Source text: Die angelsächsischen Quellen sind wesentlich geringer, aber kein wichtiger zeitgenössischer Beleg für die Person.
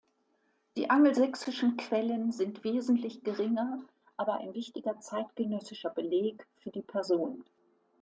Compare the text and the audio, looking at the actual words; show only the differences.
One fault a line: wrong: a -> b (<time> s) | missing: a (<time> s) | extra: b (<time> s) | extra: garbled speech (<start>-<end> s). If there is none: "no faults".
wrong: kein -> ein (4.4 s)